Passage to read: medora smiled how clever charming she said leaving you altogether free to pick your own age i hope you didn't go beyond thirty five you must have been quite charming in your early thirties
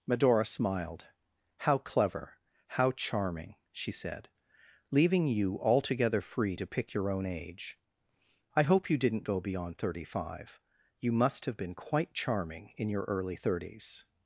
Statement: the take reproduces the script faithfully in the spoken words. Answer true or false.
false